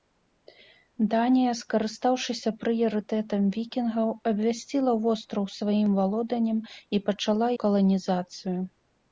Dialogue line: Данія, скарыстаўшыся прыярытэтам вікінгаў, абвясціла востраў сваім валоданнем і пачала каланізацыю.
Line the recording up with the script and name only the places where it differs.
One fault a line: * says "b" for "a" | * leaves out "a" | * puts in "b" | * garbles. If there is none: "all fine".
all fine